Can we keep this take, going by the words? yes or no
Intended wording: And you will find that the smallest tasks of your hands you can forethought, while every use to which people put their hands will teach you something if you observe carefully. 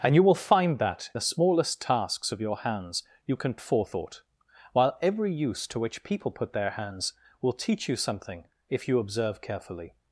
yes